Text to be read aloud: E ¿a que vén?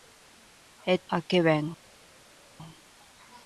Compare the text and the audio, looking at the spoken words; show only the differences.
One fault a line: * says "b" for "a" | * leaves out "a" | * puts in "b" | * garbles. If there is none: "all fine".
all fine